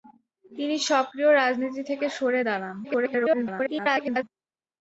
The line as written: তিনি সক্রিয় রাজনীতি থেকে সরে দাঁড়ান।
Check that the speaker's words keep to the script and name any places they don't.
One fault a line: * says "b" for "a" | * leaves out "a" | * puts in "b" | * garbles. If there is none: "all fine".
* garbles